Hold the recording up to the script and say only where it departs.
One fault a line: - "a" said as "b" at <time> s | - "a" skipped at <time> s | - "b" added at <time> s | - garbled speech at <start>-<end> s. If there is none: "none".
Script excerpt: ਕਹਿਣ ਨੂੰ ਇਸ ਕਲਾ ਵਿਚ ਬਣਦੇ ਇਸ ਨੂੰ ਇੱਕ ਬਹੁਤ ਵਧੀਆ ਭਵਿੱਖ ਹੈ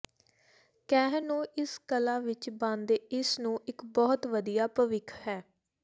none